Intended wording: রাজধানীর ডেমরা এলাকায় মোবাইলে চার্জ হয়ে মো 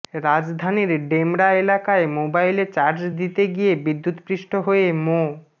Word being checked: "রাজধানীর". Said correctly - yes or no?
yes